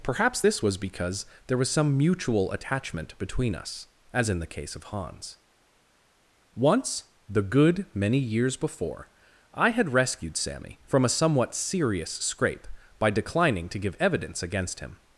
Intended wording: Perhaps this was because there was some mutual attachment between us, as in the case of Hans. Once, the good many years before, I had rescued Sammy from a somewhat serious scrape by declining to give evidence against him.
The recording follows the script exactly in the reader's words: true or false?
true